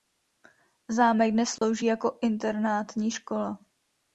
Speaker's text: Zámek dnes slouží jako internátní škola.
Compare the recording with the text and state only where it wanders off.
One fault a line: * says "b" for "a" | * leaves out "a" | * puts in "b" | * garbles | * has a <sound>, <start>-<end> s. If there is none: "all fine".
* has a dropout, 1.6-1.6 s